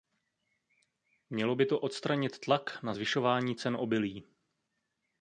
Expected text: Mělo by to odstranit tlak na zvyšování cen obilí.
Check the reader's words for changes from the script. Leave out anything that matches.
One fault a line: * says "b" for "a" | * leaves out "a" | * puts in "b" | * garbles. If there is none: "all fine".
all fine